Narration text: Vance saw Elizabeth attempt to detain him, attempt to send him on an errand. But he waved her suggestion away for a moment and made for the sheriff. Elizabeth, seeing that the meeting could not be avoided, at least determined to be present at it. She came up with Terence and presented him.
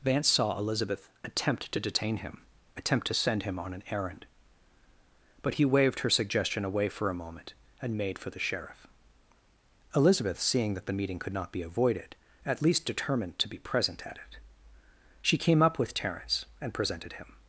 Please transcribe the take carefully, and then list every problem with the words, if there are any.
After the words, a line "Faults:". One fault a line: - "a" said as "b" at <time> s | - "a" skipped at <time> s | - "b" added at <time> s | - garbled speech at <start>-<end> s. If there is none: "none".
Vance saw Elizabeth attempt to detain him, attempt to send him on an errand. But he waved her suggestion away for a moment and made for the sheriff. Elizabeth, seeing that the meeting could not be avoided, at least determined to be present at it. She came up with Terence and presented him.
Faults:
none